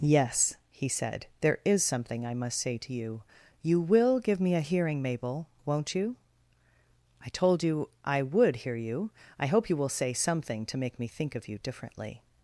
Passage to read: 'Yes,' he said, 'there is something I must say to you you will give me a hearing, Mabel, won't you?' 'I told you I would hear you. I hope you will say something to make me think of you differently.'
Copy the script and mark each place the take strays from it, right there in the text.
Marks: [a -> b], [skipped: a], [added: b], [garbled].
'Yes,' he said, 'there is something I must say to you you will give me a hearing, Mabel, won't you?' 'I told you I would hear you. I hope you will say something to make me think of you differently.'